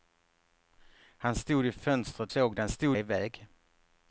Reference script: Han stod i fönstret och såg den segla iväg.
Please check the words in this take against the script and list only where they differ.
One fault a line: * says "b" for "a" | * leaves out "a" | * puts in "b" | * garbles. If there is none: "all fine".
* leaves out "och"
* says "stod" for "segla"